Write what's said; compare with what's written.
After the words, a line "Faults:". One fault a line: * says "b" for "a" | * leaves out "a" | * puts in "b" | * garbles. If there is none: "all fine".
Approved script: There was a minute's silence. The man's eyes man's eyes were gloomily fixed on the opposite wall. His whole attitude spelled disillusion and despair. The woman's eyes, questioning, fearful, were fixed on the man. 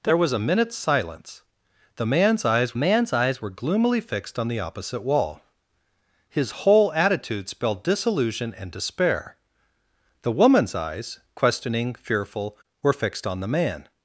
There was a minute's silence. The man's eyes man's eyes were gloomily fixed on the opposite wall. His whole attitude spelled disillusion and despair. The woman's eyes, questioning, fearful, were fixed on the man.
Faults:
all fine